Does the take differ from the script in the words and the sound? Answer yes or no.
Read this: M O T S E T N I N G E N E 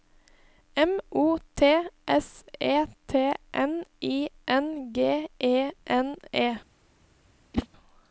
yes